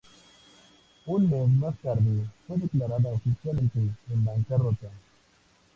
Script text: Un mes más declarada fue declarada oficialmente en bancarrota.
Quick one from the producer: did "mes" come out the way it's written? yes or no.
yes